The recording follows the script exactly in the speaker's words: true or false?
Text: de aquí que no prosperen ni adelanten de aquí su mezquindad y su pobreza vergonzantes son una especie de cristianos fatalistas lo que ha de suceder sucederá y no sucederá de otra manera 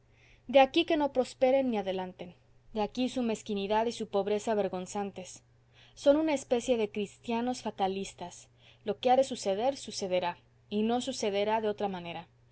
true